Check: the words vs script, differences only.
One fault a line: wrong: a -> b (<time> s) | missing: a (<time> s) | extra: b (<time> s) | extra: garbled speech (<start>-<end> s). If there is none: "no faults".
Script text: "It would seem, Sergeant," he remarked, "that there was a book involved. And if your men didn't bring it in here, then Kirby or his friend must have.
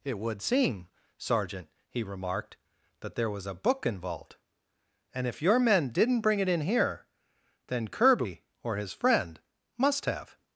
no faults